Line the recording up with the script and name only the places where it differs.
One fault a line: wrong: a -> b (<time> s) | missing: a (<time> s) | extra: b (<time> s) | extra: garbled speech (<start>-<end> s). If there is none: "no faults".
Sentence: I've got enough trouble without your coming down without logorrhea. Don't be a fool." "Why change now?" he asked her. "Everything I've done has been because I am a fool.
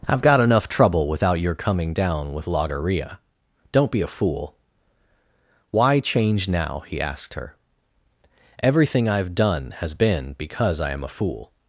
wrong: without -> with (2.3 s)